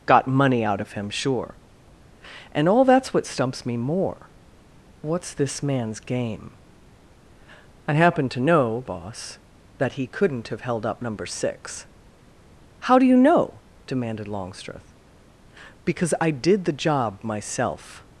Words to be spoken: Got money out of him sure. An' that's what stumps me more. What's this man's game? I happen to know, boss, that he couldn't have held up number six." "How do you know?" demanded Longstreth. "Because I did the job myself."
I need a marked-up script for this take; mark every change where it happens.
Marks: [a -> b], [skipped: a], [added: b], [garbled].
Got money out of him sure. [An' -> And all] that's what stumps me more. What's this man's game? I happen to know, boss, that he couldn't have held up number six." "How do you know?" demanded Longstreth. "Because I did the job myself."